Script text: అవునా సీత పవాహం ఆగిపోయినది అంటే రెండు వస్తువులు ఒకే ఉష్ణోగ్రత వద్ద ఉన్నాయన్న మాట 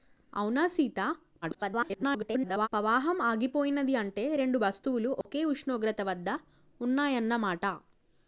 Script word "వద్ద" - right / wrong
right